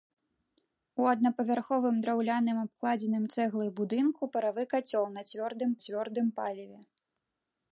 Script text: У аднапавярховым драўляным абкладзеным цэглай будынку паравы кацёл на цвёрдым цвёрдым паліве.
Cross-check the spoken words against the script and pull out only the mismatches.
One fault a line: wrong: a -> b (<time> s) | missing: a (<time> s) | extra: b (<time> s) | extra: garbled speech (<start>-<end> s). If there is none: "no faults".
no faults